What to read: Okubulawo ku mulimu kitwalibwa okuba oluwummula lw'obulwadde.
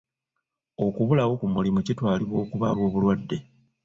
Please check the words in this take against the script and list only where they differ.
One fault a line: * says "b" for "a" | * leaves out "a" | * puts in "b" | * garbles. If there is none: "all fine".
* leaves out "oluwummula"